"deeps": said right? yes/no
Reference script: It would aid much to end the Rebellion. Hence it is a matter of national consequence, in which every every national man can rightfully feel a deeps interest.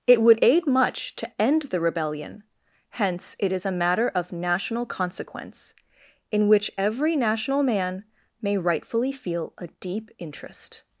no